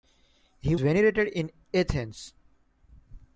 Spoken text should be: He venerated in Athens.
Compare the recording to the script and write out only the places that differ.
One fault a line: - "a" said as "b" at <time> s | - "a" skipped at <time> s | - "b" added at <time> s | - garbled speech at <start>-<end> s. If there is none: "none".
none